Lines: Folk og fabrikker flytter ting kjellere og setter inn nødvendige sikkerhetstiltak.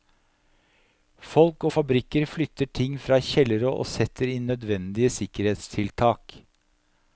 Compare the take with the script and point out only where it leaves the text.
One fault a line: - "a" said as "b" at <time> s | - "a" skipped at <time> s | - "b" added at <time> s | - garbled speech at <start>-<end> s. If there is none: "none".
- "fra" added at 3.1 s